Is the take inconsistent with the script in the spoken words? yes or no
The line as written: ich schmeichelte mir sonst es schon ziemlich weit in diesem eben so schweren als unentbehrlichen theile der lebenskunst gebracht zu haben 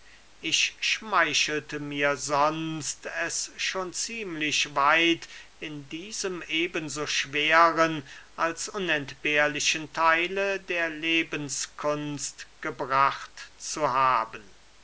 no